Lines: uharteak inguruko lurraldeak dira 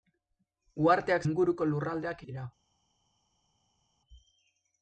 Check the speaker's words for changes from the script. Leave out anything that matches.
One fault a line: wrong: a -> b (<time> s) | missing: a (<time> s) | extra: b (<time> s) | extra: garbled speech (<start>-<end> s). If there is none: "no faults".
no faults